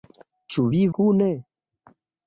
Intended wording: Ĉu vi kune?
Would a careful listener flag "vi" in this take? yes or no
no